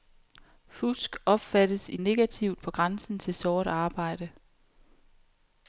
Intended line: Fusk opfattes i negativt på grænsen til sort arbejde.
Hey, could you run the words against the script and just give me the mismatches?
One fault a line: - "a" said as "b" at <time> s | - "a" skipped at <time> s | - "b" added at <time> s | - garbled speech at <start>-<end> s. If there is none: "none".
none